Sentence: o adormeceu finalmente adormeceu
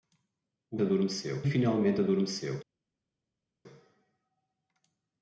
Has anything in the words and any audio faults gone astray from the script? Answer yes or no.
no